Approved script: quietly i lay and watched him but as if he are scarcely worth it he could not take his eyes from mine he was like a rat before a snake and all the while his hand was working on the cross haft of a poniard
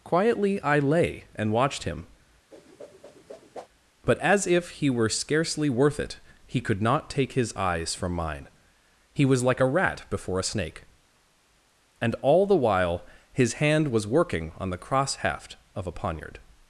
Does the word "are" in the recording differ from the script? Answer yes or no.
yes